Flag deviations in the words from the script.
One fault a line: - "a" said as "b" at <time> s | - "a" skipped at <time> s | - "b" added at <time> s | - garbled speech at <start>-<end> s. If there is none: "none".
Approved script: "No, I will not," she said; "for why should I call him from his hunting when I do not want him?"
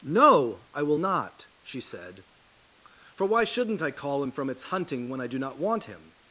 - "should" said as "shouldn't" at 3.4 s
- "his" said as "its" at 4.5 s